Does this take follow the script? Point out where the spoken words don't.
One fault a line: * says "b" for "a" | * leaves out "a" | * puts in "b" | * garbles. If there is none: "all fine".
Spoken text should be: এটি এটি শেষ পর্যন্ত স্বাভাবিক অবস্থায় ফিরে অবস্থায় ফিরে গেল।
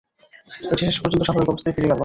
* leaves out "এটি"
* leaves out "অবস্থায় ফিরে"